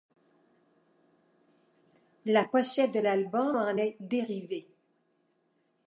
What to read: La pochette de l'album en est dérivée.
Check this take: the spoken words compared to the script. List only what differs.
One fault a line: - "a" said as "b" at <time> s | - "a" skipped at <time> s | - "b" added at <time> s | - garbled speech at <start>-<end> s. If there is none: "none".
none